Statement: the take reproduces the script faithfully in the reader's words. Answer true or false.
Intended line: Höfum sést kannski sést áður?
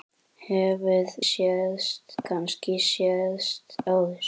true